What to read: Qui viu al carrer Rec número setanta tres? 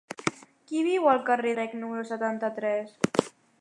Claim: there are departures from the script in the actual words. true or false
false